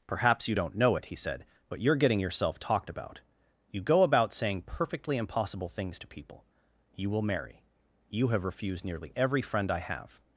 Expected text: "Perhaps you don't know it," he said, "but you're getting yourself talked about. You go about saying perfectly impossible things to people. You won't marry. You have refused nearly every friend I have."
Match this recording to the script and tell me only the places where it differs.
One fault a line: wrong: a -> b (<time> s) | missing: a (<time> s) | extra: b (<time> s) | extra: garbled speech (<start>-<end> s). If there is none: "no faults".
wrong: won't -> will (7.1 s)